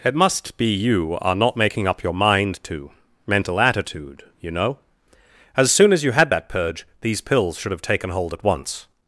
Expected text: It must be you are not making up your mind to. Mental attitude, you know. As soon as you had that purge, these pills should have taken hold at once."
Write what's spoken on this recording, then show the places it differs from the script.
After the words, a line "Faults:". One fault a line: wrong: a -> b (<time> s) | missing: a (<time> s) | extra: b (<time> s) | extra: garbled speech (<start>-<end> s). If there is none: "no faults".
It must be you are not making up your mind to. Mental attitude, you know. As soon as you had that purge, these pills should have taken hold at once."
Faults:
no faults